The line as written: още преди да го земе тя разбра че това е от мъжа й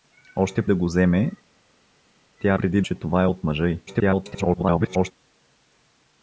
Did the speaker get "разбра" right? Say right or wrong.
wrong